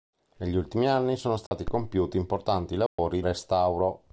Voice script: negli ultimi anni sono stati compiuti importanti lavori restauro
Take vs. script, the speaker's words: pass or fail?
pass